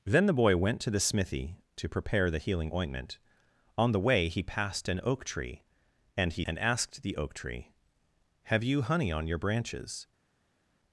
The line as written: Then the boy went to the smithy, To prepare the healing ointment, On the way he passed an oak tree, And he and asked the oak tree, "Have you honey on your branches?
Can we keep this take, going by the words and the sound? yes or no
yes